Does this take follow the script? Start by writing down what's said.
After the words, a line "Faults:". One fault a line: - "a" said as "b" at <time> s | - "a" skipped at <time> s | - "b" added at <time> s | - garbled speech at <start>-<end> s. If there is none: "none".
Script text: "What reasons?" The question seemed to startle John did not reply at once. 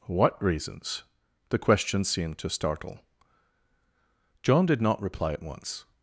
"What reasons?" The question seemed to startle John did not reply at once.
Faults:
none